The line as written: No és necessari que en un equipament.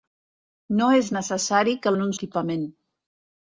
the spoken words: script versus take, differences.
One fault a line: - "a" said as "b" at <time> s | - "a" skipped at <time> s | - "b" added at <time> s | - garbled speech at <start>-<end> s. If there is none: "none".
none